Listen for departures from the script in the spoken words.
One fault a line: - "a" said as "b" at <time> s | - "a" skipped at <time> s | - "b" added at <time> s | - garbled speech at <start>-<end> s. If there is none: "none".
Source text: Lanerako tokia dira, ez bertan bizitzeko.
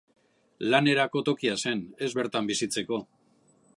- "dira" said as "zen" at 1.6 s